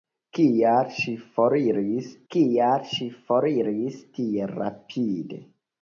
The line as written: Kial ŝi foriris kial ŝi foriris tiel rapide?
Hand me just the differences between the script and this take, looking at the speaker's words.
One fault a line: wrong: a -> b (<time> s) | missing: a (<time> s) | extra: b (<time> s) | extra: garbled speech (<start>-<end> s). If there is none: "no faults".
no faults